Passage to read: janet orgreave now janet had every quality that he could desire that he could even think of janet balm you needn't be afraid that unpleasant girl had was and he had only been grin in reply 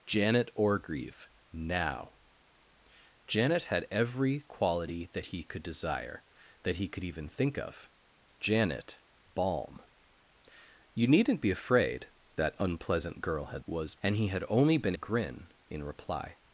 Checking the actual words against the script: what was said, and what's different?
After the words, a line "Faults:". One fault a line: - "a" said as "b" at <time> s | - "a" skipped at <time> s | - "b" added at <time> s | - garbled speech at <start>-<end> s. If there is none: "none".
janet orgreave now janet had every quality that he could desire that he could even think of janet balm you needn't be afraid that unpleasant girl had was and he had only been grin in reply
Faults:
none